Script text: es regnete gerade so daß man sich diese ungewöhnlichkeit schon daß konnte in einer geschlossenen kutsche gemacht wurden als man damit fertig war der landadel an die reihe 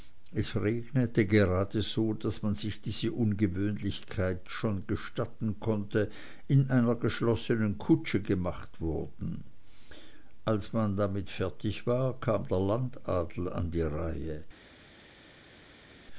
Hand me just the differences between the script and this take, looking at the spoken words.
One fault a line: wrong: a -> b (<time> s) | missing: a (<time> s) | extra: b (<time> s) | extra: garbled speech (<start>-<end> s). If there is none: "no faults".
wrong: daß -> gestatten (4.9 s)
extra: kam (12.2 s)